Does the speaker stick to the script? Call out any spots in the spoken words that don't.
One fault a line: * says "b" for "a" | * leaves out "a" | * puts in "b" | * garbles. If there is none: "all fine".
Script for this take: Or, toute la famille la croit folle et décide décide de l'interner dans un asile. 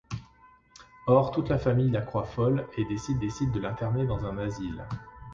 all fine